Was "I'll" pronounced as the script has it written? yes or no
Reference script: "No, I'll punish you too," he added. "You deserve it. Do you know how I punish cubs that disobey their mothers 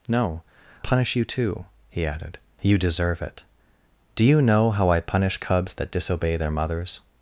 no